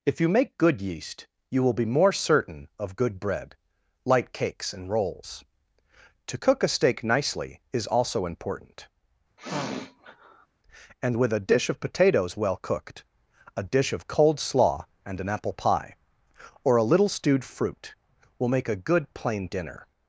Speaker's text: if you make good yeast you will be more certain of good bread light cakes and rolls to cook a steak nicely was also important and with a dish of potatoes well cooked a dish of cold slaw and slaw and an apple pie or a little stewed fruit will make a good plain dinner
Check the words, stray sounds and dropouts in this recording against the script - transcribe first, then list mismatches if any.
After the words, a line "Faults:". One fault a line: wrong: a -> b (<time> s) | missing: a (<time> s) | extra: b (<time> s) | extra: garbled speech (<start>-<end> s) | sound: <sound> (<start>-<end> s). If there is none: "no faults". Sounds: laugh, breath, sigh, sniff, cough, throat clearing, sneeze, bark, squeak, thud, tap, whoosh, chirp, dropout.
if you make good yeast you will be more certain of good bread light cakes and rolls to cook a steak nicely is also important and with a dish of potatoes well cooked a dish of cold slaw and an apple pie or a little stewed fruit will make a good plain dinner
Faults:
wrong: was -> is (7.7 s)
sound: sniff (9.4-10.5 s)
missing: slaw and (15.2 s)